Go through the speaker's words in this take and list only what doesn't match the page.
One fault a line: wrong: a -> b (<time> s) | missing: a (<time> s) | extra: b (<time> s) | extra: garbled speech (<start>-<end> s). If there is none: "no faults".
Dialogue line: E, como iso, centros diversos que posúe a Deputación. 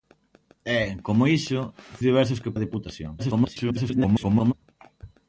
missing: centros (1.6 s)
missing: posúe (2.6 s)
extra: garbled speech (3.2-4.5 s)